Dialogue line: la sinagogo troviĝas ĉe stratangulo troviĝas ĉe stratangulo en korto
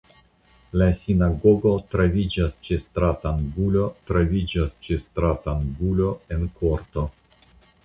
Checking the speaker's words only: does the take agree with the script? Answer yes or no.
yes